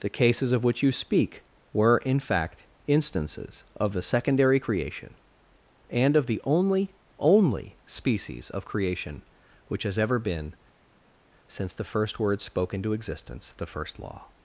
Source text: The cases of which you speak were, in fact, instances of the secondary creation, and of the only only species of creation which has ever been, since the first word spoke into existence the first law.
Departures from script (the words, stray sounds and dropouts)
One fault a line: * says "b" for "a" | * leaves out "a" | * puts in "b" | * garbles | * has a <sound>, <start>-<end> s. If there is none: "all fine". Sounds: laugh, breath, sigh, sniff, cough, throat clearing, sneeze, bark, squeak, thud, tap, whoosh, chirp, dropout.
all fine